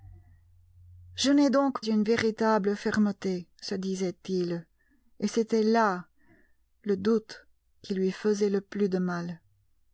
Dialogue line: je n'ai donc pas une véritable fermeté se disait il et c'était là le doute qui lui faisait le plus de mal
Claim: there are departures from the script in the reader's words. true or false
true